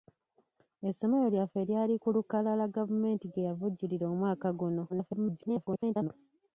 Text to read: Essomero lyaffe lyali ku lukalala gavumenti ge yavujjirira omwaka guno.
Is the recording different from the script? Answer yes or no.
yes